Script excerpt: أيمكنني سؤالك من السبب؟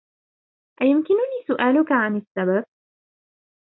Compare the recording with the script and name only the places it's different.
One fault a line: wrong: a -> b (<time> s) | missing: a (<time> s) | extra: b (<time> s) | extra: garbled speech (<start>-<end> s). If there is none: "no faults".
wrong: من -> عن (1.9 s)